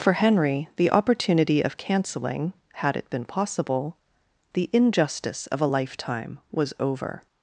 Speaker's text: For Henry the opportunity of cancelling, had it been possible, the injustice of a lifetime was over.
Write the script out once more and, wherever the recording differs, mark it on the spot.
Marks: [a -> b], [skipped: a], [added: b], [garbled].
For Henry the opportunity of cancelling, had it been possible, the injustice of a lifetime was over.